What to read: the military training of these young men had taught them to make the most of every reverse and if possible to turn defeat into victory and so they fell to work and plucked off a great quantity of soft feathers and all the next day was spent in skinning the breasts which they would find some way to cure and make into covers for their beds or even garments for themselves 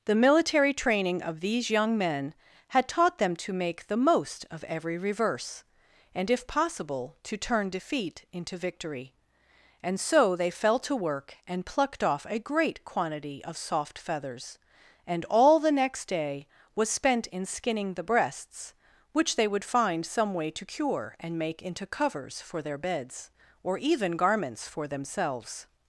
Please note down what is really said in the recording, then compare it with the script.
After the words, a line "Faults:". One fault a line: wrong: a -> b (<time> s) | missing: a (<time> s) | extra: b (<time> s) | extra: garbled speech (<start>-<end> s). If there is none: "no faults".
the military training of these young men had taught them to make the most of every reverse and if possible to turn defeat into victory and so they fell to work and plucked off a great quantity of soft feathers and all the next day was spent in skinning the breasts which they would find some way to cure and make into covers for their beds or even garments for themselves
Faults:
no faults